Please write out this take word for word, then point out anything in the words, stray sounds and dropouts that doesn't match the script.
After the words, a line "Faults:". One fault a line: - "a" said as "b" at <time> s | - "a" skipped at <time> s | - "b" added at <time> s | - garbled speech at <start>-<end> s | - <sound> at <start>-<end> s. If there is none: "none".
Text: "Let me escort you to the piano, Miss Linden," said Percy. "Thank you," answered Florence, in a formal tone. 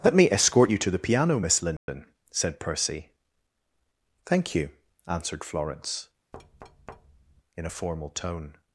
"Let me escort you to the piano, Miss Linden," said Percy. "Thank you," answered Florence, in a formal tone.
Faults:
- dropout at 1.8-1.9 s
- thud at 6.3-7.4 s